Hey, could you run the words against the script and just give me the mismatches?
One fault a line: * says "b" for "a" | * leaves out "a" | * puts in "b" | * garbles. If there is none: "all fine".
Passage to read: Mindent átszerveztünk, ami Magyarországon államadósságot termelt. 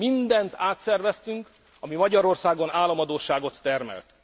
all fine